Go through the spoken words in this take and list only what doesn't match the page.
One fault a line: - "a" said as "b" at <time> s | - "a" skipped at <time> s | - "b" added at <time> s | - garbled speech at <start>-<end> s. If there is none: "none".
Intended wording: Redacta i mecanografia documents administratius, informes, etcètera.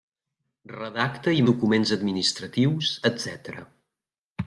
- "mecanografia" skipped at 1.4 s
- "informes" skipped at 2.9 s